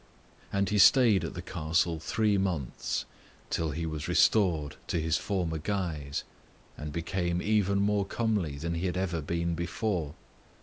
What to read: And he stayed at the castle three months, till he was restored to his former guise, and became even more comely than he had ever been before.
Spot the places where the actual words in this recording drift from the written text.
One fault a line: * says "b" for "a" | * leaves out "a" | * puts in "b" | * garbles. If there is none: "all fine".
all fine